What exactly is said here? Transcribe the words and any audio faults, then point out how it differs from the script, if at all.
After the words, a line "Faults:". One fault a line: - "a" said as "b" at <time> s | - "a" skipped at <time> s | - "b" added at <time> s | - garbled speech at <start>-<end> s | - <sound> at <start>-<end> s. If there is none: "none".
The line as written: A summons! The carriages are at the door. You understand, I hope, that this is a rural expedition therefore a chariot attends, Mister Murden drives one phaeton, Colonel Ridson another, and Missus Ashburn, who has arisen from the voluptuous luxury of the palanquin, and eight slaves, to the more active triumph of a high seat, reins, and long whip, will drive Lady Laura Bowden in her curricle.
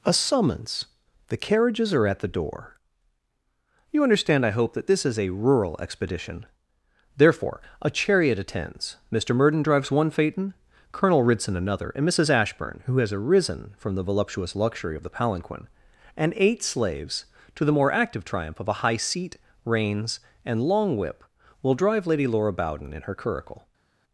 A summons! The carriages are at the door. You understand, I hope, that this is a rural expedition therefore a chariot attends, Mister Murden drives one phaeton, Colonel Ridson another, and Missus Ashburn, who has arisen from the voluptuous luxury of the palanquin, and eight slaves, to the more active triumph of a high seat, reins, and long whip, will drive Lady Laura Bowden in her curricle.
Faults:
none